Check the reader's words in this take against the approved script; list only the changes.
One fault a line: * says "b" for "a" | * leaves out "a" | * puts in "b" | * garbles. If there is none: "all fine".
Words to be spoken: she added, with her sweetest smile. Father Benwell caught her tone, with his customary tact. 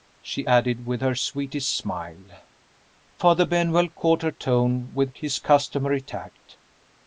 all fine